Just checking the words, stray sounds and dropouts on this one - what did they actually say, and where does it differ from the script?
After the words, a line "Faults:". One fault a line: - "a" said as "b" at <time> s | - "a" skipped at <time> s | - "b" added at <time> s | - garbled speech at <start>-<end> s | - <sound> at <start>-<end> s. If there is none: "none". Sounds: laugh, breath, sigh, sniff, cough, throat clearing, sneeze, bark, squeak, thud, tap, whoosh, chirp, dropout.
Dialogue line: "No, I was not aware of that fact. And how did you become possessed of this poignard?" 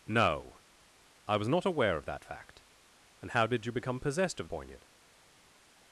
"No, I was not aware of that fact. And how did you become possessed of poignard?"
Faults:
- "this" skipped at 4.5 s